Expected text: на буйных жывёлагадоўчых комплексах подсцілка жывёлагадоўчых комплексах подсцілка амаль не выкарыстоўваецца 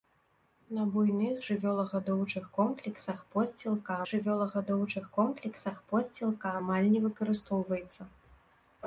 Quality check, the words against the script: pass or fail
pass